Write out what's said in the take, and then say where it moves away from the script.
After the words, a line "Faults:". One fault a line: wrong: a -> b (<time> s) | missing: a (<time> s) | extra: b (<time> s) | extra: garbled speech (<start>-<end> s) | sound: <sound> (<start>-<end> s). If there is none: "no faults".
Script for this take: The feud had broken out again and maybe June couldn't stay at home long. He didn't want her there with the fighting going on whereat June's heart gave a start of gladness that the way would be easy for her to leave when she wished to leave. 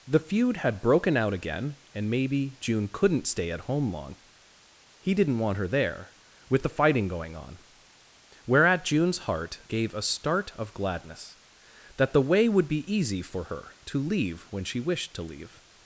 The feud had broken out again and maybe June couldn't stay at home long. He didn't want her there with the fighting going on whereat June's heart gave a start of gladness that the way would be easy for her to leave when she wished to leave.
Faults:
no faults